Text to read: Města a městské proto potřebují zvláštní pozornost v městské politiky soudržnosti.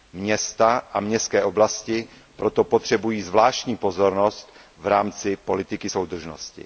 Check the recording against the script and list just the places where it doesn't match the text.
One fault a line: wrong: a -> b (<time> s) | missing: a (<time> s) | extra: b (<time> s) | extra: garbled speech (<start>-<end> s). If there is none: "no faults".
extra: oblasti (1.4 s)
wrong: městské -> rámci (4.9 s)